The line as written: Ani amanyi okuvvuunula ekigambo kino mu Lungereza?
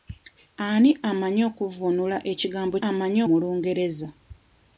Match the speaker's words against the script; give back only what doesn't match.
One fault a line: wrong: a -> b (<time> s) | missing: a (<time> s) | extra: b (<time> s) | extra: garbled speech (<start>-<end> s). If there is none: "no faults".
wrong: kino -> amanyi (2.9 s)